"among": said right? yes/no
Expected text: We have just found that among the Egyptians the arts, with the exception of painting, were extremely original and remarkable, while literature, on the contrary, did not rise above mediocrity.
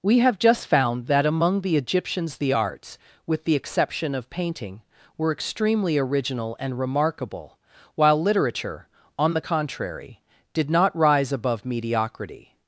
yes